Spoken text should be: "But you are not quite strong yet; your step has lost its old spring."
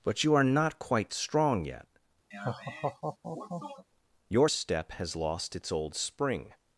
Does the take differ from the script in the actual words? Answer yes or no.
no